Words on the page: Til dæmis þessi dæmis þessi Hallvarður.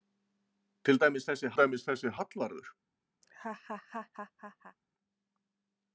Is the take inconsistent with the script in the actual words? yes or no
no